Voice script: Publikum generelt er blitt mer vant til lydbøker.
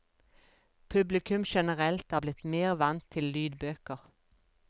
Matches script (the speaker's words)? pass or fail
pass